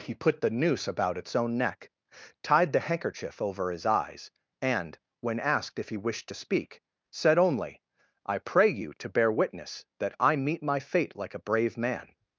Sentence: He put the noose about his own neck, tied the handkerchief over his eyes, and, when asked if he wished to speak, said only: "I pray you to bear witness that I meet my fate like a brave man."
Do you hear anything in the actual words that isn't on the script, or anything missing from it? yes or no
yes